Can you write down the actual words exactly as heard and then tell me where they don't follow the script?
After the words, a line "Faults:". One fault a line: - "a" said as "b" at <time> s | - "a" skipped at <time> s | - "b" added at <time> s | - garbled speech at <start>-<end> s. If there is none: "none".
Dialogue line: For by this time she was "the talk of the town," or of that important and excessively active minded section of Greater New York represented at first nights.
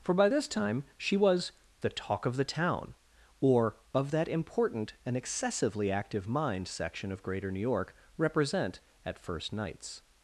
For by this time she was "the talk of the town," or of that important and excessively active mind section of Greater New York represent at first nights.
Faults:
- "minded" said as "mind" at 6.3 s
- "represented" said as "represent" at 8.2 s